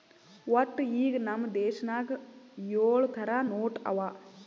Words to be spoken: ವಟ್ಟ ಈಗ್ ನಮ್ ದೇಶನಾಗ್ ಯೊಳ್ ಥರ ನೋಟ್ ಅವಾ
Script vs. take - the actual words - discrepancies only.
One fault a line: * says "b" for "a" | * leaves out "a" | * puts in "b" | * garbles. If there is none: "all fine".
all fine